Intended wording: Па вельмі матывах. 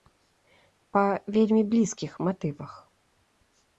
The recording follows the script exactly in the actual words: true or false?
false